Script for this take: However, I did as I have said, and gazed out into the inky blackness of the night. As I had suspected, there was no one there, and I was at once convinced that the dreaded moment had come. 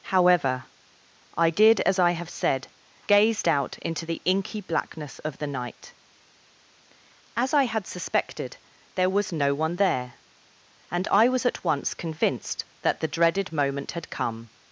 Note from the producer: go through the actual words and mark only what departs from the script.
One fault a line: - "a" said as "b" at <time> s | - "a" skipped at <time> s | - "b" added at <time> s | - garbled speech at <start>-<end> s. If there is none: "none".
- "and" skipped at 2.7 s